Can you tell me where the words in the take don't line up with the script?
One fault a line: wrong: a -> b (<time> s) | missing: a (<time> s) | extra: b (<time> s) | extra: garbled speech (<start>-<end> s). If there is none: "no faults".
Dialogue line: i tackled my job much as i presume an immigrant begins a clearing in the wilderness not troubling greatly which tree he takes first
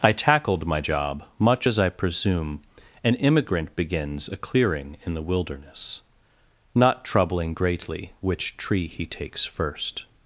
no faults